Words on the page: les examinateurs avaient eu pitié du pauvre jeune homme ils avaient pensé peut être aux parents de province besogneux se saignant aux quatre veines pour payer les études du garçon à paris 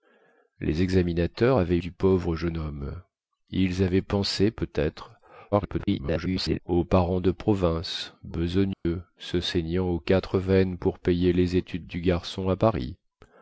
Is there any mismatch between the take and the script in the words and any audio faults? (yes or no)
yes